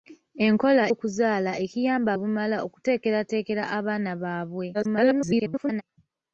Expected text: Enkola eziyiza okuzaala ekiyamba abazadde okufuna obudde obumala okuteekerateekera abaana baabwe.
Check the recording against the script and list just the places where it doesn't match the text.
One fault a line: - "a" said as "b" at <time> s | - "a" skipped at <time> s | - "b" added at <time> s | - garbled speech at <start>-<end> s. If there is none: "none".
- "eziyiza" skipped at 0.8 s
- "abazadde okufuna obudde" skipped at 2.1 s
- garbled speech at 4.7-5.8 s